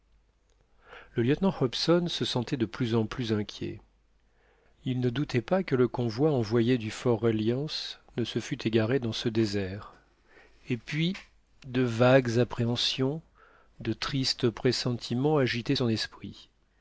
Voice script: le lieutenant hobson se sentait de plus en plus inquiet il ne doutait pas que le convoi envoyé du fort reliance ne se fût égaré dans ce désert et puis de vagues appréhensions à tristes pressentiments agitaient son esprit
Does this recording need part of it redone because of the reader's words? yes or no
yes